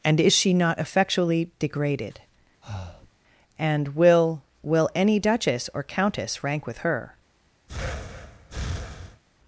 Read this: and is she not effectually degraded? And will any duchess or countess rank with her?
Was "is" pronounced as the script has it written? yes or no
yes